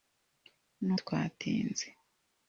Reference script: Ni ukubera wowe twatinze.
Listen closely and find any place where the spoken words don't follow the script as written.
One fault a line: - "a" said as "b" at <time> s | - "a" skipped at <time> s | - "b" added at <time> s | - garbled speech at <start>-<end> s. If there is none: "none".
- "ukubera wowe" skipped at 0.9 s